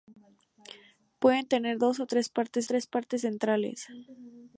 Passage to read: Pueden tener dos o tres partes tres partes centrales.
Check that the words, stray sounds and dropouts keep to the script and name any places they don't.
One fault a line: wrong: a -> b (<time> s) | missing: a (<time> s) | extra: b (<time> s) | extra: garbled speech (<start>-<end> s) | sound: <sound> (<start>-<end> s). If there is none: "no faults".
no faults